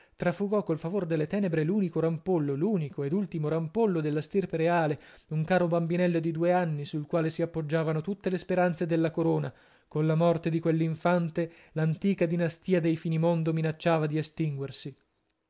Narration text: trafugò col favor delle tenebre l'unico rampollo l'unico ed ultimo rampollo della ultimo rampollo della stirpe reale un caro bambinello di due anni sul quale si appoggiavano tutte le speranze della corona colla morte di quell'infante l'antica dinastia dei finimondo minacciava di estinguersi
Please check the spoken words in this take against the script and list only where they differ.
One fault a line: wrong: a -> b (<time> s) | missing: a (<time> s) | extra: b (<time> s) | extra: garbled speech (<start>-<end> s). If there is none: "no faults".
missing: ultimo rampollo della (4.2 s)